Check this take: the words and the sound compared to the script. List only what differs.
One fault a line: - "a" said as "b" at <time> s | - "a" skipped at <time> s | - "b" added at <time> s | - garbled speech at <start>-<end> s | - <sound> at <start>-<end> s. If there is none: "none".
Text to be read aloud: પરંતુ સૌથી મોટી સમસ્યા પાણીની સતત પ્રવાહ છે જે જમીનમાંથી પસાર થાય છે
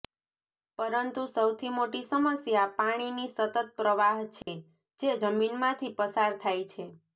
- dropout at 4.4-4.5 s